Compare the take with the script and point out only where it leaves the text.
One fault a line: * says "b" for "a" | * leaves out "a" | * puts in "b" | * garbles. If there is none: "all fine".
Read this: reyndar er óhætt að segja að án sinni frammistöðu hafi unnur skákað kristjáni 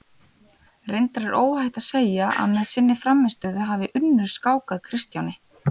* says "með" for "án"